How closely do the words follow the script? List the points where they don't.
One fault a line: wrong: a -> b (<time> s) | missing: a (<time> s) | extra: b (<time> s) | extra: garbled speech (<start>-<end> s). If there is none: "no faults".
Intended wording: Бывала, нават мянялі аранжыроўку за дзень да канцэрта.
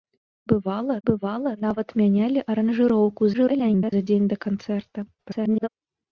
extra: бывала (1.1 s)
extra: garbled speech (3.3-3.9 s)
extra: garbled speech (5.2-5.7 s)